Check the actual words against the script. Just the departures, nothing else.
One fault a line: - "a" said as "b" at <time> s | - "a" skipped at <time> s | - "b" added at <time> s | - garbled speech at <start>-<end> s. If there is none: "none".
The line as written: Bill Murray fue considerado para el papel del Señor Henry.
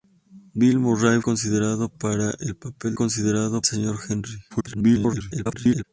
- "fue" skipped at 1.2 s
- "del" said as "considerado" at 2.9 s
- garbled speech at 4.5-5.8 s